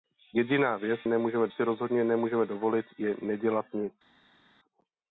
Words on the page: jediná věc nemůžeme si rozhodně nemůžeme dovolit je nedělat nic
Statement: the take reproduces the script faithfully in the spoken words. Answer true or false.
true